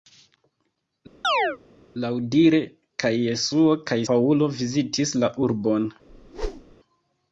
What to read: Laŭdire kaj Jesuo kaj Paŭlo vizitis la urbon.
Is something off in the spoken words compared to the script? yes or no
no